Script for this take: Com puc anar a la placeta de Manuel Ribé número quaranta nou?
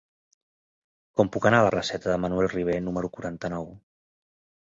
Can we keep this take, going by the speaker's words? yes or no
yes